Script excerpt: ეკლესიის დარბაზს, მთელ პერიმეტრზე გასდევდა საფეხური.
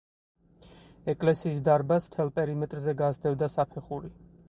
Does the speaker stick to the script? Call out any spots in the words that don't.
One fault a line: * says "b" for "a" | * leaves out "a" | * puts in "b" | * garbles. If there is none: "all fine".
all fine